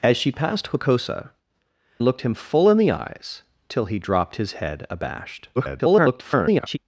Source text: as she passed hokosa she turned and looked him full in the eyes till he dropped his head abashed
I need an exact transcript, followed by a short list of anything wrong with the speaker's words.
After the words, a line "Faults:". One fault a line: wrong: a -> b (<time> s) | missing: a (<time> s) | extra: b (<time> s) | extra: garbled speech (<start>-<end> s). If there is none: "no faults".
as she passed hokosa looked him full in the eyes till he dropped his head abashed [garbled]
Faults:
missing: she turned and (1.3 s)
extra: garbled speech (5.6-6.8 s)